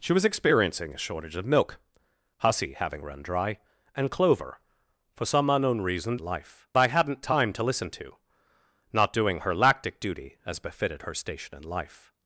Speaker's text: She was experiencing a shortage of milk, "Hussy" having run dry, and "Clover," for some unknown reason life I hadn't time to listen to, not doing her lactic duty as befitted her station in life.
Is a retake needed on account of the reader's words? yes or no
no